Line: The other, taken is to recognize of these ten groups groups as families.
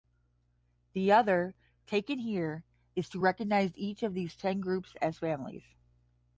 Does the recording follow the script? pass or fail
fail